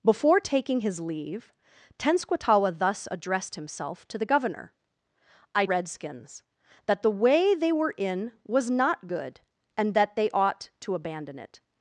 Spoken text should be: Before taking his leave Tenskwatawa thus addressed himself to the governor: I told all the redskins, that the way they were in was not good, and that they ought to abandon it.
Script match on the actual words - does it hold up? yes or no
no